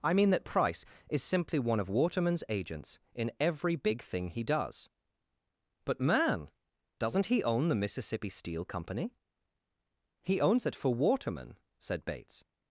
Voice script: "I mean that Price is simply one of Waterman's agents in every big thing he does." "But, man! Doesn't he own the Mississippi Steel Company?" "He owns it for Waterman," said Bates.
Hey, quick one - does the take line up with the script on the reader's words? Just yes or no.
yes